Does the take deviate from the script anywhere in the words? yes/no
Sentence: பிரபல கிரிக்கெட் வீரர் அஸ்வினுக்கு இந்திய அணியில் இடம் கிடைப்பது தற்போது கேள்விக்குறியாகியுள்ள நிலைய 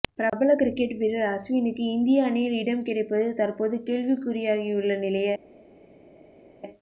no